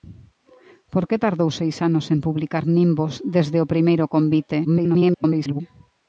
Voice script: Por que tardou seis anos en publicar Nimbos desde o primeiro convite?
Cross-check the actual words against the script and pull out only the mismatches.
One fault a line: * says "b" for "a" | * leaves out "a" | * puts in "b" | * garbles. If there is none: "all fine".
* garbles